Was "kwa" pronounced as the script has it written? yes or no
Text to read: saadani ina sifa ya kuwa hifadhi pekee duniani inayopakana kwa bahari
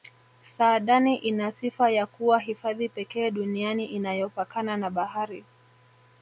no